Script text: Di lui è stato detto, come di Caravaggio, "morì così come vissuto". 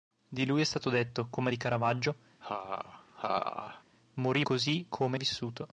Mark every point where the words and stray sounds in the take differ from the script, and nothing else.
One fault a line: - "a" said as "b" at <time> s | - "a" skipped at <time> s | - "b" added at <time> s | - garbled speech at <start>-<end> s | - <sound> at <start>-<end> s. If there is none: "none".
- laugh at 2.4-3.8 s